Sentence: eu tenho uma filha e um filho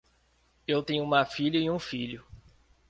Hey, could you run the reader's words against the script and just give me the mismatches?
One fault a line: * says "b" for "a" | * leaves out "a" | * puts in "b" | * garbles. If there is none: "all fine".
all fine